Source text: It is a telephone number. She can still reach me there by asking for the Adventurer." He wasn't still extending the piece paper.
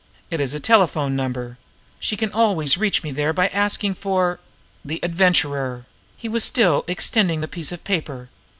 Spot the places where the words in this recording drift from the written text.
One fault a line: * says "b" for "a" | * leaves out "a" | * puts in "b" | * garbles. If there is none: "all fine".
* says "always" for "still"
* says "was" for "wasn't"
* puts in "of"